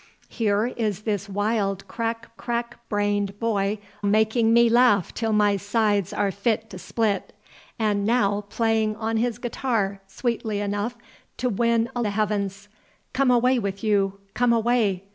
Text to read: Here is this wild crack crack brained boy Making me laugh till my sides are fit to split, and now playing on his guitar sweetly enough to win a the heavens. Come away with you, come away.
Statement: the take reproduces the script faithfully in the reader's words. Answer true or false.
true